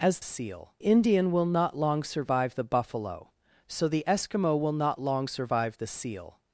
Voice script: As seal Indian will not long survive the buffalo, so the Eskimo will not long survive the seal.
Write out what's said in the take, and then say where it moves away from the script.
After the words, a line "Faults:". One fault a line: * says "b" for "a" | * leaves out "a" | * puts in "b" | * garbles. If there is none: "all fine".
As seal Indian will not long survive the buffalo, so the Eskimo will not long survive the seal.
Faults:
all fine